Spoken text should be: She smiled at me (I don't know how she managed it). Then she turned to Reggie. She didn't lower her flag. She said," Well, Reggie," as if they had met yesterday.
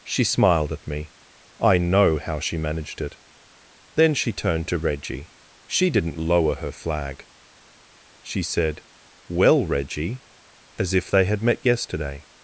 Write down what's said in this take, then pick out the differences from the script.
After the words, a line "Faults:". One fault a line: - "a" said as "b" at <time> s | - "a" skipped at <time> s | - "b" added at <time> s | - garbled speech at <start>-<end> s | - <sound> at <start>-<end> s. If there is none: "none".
She smiled at me (I know how she managed it). Then she turned to Reggie. She didn't lower her flag. She said," Well, Reggie," as if they had met yesterday.
Faults:
- "don't" skipped at 1.8 s